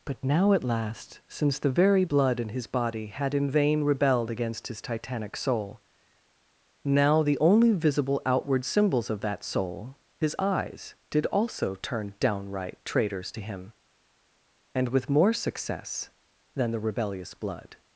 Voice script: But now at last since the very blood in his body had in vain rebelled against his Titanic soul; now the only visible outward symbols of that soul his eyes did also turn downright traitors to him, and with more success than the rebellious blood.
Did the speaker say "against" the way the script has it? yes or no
yes